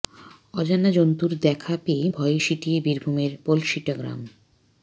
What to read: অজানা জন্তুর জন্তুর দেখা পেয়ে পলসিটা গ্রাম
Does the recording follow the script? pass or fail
fail